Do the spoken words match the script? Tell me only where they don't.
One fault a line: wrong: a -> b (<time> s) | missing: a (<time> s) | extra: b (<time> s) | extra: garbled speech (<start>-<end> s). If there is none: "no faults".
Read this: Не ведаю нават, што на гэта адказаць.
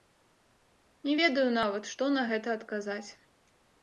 no faults